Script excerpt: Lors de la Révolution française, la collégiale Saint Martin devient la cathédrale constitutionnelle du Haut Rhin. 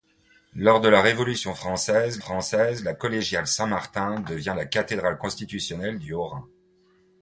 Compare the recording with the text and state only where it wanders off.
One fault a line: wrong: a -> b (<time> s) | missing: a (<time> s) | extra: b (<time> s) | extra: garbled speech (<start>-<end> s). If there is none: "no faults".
extra: française (2.2 s)